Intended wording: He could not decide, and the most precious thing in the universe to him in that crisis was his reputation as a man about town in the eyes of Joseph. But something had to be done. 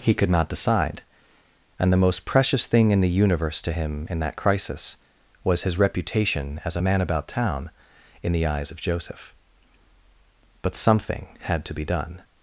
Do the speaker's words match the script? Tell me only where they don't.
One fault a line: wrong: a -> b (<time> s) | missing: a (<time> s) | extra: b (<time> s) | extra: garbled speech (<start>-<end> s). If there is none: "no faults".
no faults